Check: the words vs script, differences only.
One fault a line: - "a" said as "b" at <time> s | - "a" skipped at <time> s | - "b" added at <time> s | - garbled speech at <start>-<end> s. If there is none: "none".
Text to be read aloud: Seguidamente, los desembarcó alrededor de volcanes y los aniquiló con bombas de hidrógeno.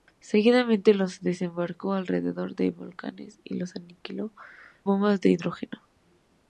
- "con" skipped at 4.3 s